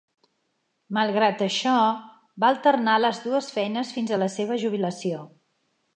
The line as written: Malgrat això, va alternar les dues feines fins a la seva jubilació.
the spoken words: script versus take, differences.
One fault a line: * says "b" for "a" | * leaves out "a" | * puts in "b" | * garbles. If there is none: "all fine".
all fine